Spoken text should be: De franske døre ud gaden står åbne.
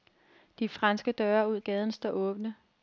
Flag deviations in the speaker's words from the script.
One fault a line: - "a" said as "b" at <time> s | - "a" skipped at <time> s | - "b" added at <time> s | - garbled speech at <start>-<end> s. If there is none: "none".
none